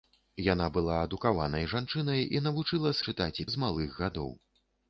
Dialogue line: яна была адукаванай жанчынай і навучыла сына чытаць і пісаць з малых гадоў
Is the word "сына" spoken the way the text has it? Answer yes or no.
no